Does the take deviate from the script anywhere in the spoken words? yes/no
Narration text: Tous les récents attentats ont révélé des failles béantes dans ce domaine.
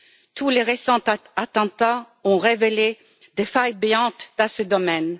no